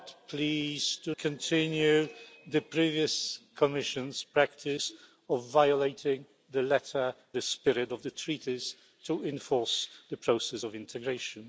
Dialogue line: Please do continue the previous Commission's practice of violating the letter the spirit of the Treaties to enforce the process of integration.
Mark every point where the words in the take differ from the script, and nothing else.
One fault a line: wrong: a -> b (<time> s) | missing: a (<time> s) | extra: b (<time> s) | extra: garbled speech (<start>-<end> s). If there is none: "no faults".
no faults